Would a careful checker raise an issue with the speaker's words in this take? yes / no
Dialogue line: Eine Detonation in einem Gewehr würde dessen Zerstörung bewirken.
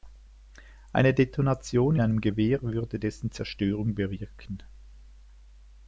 yes